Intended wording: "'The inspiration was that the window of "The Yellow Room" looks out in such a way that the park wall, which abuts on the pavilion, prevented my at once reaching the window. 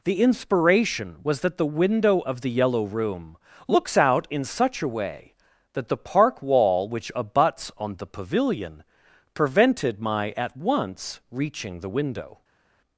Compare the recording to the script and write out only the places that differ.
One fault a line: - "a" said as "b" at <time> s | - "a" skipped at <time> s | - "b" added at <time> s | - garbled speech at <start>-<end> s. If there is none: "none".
none